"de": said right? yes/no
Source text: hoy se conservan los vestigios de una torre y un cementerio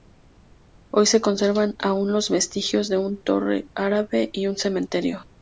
yes